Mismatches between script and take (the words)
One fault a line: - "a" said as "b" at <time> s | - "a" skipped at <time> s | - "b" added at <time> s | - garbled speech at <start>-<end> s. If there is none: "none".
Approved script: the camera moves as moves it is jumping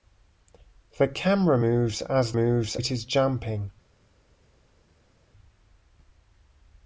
none